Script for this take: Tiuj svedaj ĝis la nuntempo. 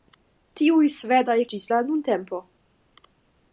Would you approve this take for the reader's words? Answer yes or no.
yes